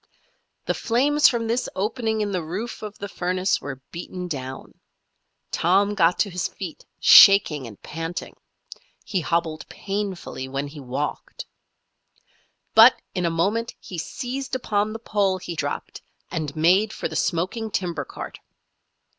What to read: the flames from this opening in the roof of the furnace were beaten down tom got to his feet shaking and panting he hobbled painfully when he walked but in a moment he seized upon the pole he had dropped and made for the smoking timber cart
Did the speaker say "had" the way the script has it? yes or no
no